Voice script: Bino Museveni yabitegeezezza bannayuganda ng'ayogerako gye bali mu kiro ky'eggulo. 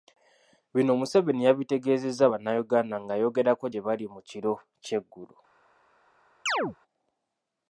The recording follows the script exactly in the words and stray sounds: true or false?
false